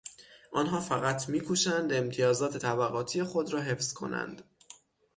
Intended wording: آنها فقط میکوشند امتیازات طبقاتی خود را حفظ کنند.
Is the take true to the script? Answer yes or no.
yes